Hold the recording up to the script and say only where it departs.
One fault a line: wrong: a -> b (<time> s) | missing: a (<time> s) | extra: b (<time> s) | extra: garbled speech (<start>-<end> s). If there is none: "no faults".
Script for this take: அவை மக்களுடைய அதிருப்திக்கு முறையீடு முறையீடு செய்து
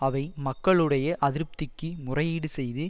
missing: முறையீடு (2.5 s)